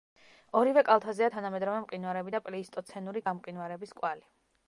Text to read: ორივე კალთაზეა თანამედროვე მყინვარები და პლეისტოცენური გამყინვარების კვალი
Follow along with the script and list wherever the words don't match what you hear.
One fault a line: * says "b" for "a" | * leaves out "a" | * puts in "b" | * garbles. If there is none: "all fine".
all fine